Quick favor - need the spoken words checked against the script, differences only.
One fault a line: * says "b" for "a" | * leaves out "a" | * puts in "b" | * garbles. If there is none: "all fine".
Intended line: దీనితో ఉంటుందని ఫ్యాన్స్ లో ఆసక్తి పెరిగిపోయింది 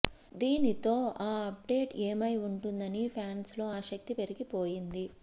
* puts in "ఆ అప్డేట్ ఏమై"